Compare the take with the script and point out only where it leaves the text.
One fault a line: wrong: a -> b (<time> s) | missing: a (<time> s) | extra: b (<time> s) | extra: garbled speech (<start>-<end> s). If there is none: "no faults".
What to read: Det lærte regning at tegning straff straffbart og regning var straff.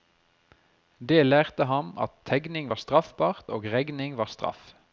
wrong: regning -> ham (1.6 s)
wrong: straff -> var (2.7 s)